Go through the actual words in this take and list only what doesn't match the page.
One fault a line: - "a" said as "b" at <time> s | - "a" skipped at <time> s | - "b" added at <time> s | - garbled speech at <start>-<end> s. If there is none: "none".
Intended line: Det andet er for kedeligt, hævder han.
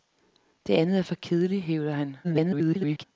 - garbled speech at 2.2-3.0 s